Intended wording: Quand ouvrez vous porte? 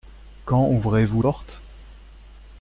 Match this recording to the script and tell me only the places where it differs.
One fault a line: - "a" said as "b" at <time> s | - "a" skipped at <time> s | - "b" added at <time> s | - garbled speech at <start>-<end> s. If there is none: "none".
none